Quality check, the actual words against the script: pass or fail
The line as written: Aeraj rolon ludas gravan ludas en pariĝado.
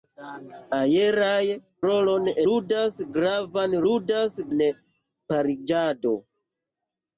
pass